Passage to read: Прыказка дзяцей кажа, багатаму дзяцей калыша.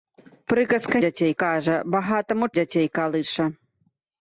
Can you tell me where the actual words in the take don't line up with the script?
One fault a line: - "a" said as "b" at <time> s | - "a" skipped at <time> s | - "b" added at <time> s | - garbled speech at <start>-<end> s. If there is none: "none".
none